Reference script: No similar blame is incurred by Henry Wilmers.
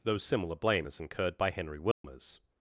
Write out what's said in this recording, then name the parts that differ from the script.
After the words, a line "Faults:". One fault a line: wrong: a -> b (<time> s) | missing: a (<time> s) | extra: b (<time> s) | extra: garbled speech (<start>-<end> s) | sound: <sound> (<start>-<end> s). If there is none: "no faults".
Though similar blame is incurred by Henry Wilmers.
Faults:
wrong: No -> Though (0.0 s)
sound: dropout (1.9-2.0 s)